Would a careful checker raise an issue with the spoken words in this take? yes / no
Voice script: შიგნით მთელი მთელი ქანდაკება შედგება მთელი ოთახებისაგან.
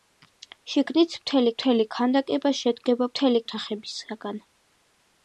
no